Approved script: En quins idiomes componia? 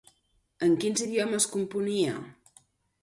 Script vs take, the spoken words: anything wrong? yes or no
no